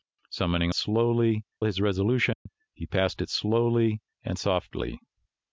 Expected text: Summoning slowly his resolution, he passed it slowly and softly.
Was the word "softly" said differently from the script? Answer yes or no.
no